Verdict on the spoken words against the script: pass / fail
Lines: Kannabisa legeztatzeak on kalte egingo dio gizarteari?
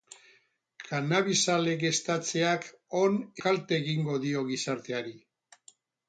pass